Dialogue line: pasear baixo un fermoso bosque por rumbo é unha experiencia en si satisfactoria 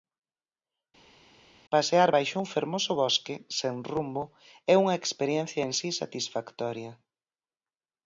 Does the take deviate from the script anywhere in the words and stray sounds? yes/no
yes